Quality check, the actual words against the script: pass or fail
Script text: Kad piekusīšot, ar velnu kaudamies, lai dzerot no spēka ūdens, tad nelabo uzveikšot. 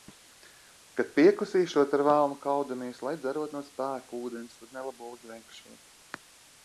pass